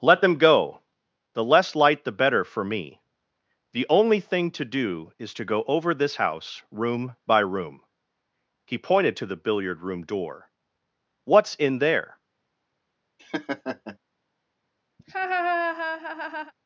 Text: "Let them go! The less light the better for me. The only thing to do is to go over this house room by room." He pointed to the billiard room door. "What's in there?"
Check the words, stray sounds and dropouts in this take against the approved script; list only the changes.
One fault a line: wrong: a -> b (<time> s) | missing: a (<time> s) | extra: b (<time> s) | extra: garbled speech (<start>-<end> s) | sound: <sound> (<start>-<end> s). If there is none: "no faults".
sound: laugh (13.2-14.0 s)
sound: laugh (15.0-16.5 s)